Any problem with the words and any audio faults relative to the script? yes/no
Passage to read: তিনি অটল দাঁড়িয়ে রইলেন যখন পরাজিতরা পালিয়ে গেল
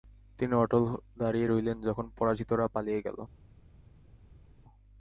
no